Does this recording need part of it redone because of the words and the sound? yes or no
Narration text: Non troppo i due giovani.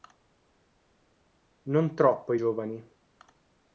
yes